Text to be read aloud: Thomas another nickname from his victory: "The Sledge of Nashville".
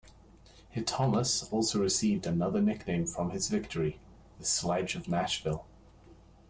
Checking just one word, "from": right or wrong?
right